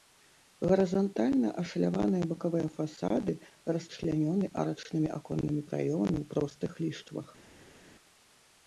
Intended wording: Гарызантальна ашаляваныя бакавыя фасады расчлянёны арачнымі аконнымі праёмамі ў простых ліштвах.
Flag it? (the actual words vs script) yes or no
no